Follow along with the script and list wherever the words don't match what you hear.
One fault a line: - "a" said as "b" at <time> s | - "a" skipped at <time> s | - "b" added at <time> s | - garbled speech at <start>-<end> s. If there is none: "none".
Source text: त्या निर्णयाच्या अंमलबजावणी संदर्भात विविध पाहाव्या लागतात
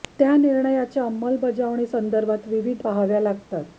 none